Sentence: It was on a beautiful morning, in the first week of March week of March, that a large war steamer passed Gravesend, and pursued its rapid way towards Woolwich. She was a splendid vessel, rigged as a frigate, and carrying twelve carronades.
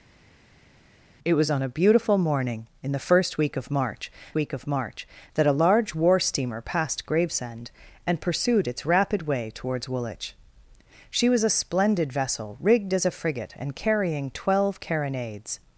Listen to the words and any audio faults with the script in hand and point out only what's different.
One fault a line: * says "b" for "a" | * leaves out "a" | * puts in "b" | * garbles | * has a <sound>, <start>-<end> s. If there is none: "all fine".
all fine